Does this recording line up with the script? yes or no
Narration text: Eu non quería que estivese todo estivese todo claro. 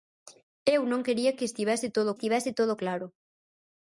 yes